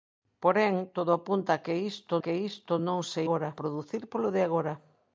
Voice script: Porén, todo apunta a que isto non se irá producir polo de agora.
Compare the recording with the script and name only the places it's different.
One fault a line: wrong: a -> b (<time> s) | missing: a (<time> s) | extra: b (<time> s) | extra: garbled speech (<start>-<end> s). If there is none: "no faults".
extra: que isto (2.2 s)
wrong: irá -> agora (3.2 s)